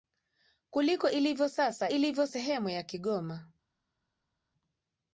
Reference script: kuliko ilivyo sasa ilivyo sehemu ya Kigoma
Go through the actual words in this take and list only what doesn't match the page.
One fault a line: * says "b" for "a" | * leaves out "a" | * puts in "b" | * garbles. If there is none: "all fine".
all fine